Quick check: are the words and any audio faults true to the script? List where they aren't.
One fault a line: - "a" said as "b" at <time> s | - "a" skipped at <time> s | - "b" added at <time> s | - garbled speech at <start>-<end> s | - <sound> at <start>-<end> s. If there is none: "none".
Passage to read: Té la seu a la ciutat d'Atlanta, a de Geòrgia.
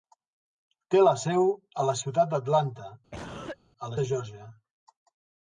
- cough at 3.1-3.6 s